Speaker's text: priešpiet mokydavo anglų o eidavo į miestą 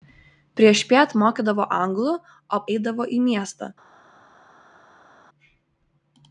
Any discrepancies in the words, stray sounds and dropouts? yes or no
no